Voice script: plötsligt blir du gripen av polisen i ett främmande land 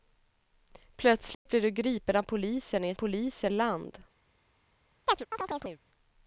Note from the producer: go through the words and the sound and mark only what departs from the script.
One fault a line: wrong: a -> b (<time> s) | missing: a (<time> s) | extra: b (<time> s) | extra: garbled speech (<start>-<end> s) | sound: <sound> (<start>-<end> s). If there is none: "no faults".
sound: dropout (1.3-1.5 s)
wrong: främmande -> polisen (2.9 s)
sound: chirp (5.1-5.8 s)